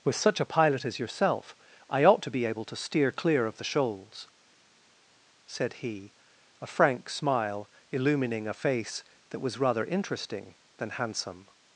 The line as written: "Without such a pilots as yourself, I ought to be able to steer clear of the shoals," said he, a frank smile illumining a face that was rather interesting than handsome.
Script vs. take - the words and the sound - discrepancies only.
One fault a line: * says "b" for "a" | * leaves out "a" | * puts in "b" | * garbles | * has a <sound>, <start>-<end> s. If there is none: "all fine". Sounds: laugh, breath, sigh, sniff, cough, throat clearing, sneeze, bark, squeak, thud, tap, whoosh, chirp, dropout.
* says "With" for "Without"
* says "pilot" for "pilots"